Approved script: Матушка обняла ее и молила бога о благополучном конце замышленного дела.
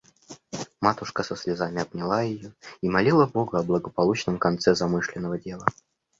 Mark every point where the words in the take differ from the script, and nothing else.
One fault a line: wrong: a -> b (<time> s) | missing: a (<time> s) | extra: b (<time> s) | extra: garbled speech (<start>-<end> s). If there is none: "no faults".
extra: со слезами (1.2 s)